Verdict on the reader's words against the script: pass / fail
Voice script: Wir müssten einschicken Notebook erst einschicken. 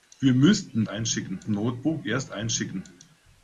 pass